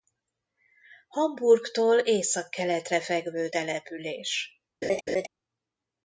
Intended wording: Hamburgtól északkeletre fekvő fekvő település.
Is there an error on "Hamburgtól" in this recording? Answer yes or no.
no